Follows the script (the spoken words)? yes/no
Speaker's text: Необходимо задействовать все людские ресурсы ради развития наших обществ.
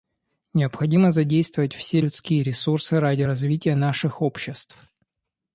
yes